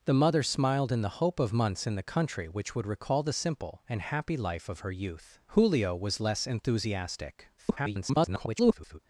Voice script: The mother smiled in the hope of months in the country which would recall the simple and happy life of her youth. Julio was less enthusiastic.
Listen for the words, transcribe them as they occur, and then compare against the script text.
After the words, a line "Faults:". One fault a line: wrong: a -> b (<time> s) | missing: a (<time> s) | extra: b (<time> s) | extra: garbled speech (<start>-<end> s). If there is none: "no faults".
The mother smiled in the hope of months in the country which would recall the simple and happy life of her youth. Julio was less enthusiastic. [garbled]
Faults:
extra: garbled speech (7.6-9.0 s)